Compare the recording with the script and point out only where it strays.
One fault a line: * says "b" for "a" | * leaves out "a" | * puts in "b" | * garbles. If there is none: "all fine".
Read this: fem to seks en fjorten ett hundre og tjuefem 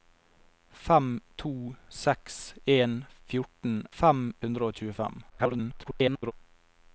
* says "fem" for "ett"
* garbles